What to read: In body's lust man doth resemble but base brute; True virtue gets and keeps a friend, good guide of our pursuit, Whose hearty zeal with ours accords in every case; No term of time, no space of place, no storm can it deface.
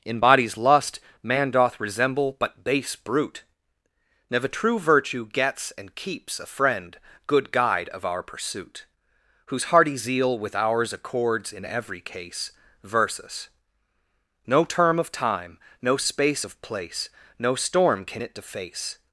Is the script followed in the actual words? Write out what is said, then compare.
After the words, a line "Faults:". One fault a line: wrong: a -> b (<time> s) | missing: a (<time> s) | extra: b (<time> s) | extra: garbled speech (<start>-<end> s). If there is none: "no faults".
In body's lust man doth resemble but base brute; never True virtue gets and keeps a friend, good guide of our pursuit, Whose hearty zeal with ours accords in every case; versus No term of time, no space of place, no storm can it deface.
Faults:
extra: never (4.3 s)
extra: versus (12.8 s)